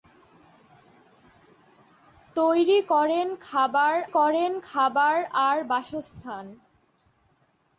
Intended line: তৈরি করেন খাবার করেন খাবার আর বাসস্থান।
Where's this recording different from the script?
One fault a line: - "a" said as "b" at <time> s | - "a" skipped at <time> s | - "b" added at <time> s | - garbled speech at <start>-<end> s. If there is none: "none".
none